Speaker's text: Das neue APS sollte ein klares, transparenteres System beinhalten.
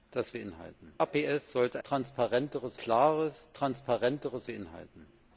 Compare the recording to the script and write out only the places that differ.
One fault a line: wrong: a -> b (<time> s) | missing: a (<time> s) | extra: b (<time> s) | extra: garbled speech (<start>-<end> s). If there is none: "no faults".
wrong: neue -> beinhalten (0.3 s)
wrong: ein -> transparenteres (1.8 s)
missing: System (4.5 s)